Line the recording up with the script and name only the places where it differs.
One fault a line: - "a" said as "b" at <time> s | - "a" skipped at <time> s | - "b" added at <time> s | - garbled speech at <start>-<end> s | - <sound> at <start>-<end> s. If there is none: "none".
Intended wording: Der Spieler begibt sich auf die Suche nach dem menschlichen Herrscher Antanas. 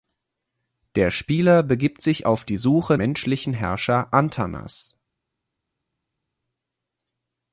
- "nach dem" skipped at 3.0 s